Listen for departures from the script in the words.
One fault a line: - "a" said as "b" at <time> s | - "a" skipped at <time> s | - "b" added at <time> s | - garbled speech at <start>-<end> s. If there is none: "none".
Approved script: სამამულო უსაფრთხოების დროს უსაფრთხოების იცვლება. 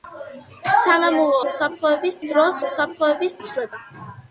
none